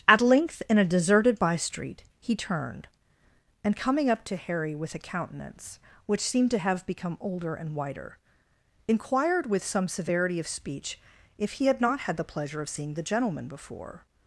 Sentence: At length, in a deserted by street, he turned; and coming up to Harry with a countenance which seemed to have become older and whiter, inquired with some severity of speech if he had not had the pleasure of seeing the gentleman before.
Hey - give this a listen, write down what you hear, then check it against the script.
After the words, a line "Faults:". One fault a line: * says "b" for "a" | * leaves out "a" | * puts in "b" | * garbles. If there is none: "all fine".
At length, in a deserted by street, he turned; and coming up to Harry with a countenance which seemed to have become older and whiter, inquired with some severity of speech if he had not had the pleasure of seeing the gentleman before.
Faults:
all fine